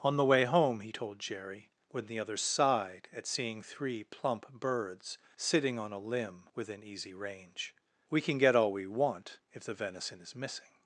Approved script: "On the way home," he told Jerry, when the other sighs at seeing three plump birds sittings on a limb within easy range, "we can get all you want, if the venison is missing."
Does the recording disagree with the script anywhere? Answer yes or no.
yes